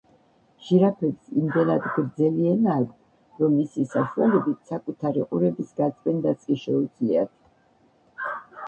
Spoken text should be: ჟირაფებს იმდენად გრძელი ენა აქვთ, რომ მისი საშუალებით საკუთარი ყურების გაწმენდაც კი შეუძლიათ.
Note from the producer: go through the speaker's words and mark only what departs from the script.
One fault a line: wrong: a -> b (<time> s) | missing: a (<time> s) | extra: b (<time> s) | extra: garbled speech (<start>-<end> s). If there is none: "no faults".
no faults